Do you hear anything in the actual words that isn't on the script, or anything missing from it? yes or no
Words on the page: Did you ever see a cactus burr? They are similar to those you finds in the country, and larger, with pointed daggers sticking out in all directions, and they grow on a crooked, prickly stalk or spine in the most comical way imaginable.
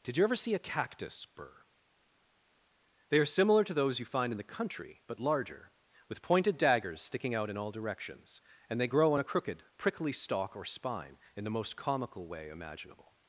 yes